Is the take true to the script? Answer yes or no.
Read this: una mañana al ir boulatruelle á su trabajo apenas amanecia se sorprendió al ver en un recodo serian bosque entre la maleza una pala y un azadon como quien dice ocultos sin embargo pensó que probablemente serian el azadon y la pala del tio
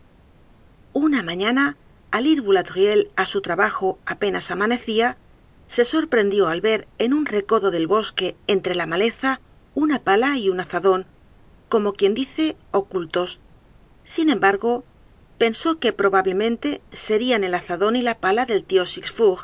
no